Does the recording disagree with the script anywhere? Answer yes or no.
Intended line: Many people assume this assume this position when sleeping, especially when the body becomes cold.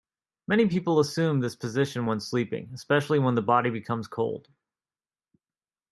yes